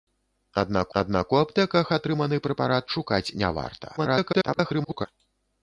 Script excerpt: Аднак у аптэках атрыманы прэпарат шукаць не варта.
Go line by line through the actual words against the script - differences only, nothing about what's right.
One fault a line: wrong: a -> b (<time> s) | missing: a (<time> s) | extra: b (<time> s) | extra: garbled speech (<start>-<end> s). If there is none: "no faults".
extra: аднак (1.0 s)
extra: garbled speech (4.0-5.1 s)